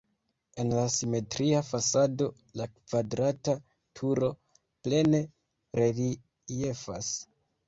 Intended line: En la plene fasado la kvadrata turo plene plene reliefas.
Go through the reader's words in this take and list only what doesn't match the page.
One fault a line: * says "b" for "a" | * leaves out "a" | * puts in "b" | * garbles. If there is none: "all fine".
* says "simetria" for "plene"
* leaves out "plene"